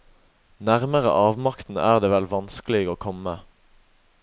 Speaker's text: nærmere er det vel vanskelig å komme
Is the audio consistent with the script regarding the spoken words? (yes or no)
no